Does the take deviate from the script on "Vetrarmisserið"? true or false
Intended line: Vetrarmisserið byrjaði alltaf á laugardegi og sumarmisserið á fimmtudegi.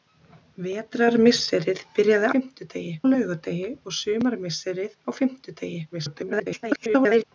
false